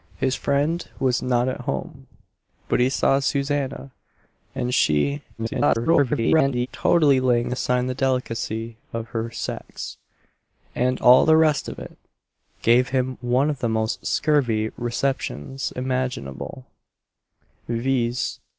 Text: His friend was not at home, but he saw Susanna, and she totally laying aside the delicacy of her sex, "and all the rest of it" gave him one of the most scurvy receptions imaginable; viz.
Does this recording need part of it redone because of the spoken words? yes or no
yes